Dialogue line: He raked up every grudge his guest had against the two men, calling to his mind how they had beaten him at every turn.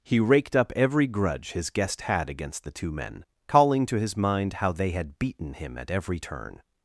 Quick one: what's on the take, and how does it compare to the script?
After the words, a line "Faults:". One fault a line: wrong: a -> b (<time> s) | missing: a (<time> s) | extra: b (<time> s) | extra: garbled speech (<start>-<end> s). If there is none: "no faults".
He raked up every grudge his guest had against the two men, calling to his mind how they had beaten him at every turn.
Faults:
no faults